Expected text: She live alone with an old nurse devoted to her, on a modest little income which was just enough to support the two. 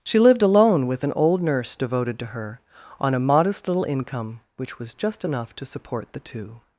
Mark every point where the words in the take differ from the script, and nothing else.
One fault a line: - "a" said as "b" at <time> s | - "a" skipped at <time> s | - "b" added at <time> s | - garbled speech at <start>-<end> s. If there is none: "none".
- "live" said as "lived" at 0.2 s